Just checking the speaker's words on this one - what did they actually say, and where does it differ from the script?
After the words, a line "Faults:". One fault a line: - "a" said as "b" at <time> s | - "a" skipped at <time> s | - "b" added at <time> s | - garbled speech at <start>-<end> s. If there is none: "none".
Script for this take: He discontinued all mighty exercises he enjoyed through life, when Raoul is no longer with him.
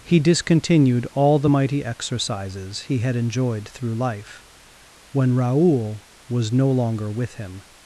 He discontinued all the mighty exercises he had enjoyed through life, when Raoul was no longer with him.
Faults:
- "the" added at 1.4 s
- "had" added at 3.0 s
- "is" said as "was" at 6.3 s